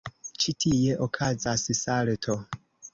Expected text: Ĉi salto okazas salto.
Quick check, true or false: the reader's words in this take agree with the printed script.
false